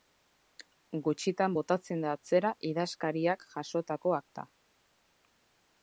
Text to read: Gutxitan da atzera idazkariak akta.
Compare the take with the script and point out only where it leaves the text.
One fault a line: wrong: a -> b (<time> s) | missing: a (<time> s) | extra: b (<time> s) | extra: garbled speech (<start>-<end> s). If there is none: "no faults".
extra: botatzen (1.6 s)
extra: jasotako (3.6 s)